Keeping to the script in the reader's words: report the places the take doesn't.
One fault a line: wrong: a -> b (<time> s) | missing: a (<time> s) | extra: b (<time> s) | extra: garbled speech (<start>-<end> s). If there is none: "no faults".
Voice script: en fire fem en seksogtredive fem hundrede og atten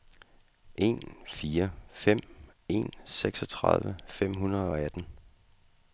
no faults